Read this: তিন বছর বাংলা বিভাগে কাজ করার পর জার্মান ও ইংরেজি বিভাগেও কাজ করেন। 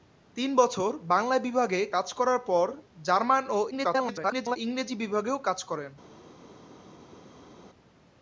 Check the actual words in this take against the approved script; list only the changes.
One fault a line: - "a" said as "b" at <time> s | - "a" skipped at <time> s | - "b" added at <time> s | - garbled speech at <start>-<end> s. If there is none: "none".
- garbled speech at 3.7-4.6 s